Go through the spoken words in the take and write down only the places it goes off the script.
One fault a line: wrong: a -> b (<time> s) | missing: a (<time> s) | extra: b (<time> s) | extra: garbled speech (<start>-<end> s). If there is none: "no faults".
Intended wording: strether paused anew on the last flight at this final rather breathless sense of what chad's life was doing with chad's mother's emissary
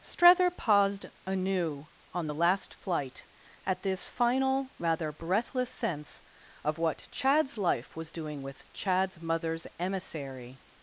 no faults